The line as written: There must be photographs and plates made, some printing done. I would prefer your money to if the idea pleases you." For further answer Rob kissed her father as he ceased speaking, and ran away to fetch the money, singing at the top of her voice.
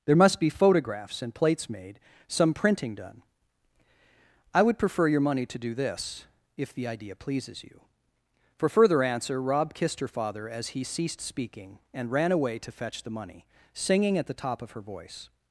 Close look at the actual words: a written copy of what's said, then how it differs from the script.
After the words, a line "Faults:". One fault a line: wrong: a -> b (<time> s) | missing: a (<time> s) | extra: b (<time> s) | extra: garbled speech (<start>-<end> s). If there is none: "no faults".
There must be photographs and plates made, some printing done. I would prefer your money to do this, if the idea pleases you." For further answer Rob kissed her father as he ceased speaking, and ran away to fetch the money, singing at the top of her voice.
Faults:
extra: do this (5.6 s)